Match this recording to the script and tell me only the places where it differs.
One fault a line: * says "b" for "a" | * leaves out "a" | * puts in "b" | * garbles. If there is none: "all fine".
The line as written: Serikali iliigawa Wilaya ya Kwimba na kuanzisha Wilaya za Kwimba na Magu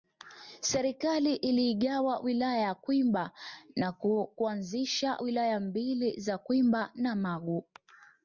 * puts in "mbili"